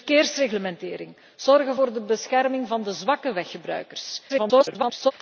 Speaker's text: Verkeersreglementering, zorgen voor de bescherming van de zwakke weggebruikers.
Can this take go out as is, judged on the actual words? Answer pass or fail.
fail